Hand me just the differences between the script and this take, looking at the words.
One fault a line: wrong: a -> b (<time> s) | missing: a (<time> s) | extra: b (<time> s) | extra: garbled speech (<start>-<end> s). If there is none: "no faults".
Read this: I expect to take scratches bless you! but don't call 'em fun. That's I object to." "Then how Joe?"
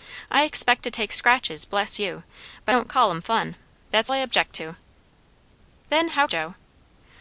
no faults